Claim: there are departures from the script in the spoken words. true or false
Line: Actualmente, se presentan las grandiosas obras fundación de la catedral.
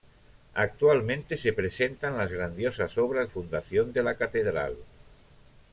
false